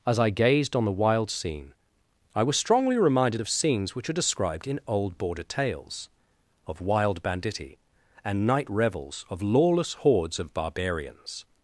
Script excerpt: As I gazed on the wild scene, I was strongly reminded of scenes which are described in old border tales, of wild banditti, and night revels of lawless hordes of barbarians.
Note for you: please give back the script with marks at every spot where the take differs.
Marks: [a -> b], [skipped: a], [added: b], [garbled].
As I gazed on the wild scene, I was strongly reminded of scenes which are described in old border tales, of wild banditti, and night revels of lawless hordes of barbarians.